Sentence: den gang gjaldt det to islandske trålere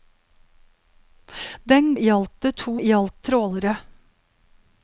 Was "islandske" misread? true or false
true